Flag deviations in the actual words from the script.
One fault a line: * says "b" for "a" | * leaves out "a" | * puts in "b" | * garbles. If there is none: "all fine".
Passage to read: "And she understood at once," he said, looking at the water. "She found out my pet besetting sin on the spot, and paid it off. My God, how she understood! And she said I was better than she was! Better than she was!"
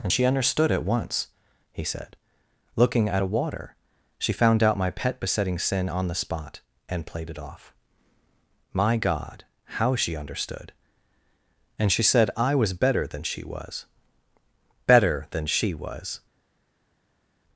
* says "a" for "the"
* says "played" for "paid"